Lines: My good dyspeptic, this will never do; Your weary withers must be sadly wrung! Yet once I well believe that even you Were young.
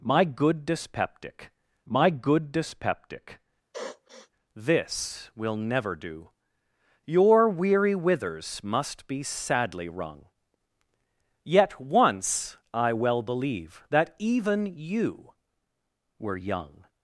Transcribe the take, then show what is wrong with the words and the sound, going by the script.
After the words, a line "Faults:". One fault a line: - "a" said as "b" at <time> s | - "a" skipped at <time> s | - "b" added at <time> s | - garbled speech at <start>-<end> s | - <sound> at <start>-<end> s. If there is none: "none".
My good dyspeptic my good dyspeptic, this will never do; Your weary withers must be sadly wrung! Yet once I well believe that even you Were young.
Faults:
- "my good dyspeptic" added at 1.9 s
- sniff at 3.7-4.3 s